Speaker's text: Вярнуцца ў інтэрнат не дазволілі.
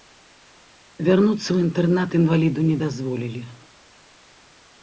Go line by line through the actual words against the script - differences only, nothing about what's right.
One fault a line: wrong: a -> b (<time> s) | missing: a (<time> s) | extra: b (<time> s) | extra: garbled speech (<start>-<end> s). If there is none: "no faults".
extra: інваліду (2.2 s)